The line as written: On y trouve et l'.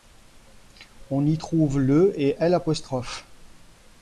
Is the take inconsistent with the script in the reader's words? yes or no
yes